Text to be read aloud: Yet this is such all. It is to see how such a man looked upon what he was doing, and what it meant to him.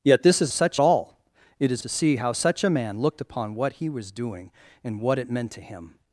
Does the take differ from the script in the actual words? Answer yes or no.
no